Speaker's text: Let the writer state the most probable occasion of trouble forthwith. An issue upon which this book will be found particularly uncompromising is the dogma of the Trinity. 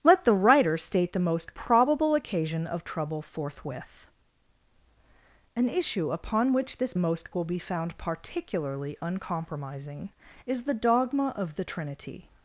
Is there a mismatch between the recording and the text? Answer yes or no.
yes